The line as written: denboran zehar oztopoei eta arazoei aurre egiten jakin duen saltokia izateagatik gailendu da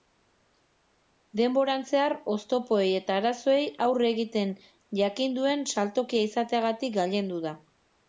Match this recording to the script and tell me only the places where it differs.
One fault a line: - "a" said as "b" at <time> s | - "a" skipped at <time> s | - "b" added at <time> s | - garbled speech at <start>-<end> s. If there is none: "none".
none